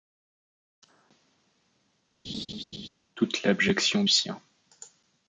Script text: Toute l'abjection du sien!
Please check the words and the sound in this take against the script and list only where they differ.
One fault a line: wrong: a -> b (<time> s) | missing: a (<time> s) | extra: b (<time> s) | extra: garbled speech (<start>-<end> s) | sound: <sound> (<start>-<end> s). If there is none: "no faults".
sound: laugh (2.2-2.9 s)
missing: du (4.0 s)